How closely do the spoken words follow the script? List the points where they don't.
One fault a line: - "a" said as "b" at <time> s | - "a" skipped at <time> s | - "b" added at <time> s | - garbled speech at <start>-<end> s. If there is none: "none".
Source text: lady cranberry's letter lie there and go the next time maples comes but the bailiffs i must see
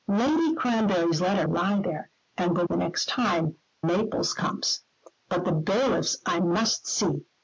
none